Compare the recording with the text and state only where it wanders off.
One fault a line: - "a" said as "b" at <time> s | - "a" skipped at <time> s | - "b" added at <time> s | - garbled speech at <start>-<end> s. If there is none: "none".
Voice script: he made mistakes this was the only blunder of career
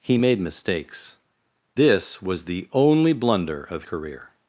none